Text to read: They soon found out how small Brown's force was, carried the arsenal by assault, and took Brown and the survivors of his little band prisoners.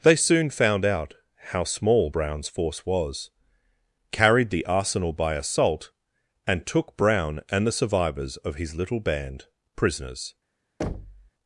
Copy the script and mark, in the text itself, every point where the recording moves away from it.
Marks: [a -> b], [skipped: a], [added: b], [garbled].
They soon found out how small Brown's force was, carried the arsenal by assault, and took Brown and the survivors of his little band prisoners.